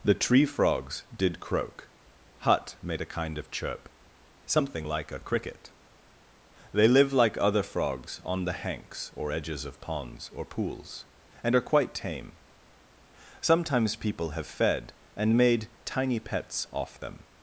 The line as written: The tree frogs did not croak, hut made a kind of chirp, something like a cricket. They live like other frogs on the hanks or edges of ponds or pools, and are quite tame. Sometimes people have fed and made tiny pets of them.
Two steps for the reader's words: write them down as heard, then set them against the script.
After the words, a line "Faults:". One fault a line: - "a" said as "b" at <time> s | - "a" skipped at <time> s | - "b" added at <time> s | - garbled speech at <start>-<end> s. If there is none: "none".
The tree frogs did croak, hut made a kind of chirp, something like a cricket. They live like other frogs on the hanks or edges of ponds or pools, and are quite tame. Sometimes people have fed and made tiny pets off them.
Faults:
- "not" skipped at 1.4 s
- "of" said as "off" at 16.7 s